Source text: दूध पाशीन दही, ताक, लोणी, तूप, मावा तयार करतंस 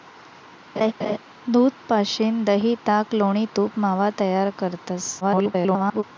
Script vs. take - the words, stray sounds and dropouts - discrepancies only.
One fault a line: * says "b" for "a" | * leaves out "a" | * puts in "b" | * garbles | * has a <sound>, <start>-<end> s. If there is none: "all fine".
* has a laugh, 0.8-1.2 s
* garbles